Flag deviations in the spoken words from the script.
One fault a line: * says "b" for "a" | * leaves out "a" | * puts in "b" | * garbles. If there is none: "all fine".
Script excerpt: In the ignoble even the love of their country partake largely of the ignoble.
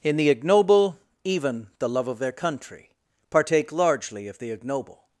all fine